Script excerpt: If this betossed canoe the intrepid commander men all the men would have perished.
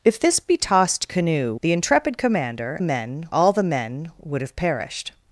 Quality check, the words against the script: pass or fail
pass